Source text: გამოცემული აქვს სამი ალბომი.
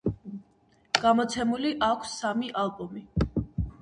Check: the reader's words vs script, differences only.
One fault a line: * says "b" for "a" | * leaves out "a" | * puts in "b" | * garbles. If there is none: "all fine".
all fine